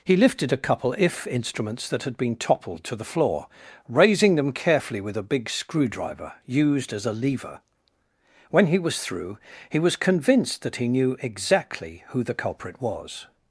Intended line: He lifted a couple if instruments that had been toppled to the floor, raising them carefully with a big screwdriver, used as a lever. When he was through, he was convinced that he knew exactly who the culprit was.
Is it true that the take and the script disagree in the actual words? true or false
false